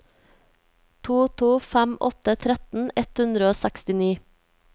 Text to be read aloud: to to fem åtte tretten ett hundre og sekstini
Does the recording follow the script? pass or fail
pass